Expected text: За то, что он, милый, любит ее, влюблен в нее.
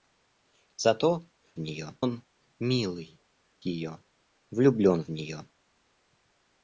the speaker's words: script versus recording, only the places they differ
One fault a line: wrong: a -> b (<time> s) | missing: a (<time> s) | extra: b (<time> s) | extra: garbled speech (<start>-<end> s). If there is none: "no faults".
wrong: что -> нее (1.6 s)
missing: любит (3.2 s)